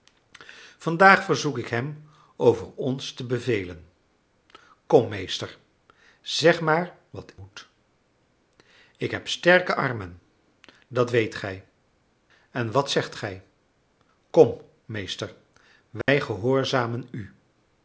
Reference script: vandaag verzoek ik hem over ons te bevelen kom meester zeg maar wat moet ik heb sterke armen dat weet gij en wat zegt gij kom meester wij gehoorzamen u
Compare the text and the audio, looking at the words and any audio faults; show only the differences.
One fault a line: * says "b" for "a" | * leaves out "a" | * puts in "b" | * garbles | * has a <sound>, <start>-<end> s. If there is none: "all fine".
* has a dropout, 16.0-16.1 s